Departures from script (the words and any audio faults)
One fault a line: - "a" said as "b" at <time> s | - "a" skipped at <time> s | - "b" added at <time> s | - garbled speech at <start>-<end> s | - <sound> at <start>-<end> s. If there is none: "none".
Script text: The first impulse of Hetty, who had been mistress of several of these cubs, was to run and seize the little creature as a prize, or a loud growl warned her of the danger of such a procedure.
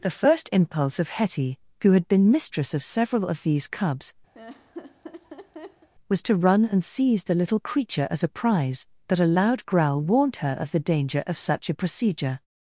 - laugh at 4.3-5.9 s
- "or" said as "but" at 9.1 s